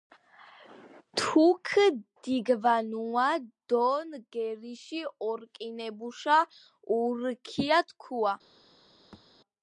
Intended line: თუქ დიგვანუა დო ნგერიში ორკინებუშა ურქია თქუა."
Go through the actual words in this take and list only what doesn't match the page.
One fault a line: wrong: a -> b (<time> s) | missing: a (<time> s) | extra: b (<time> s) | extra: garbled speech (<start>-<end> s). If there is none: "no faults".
no faults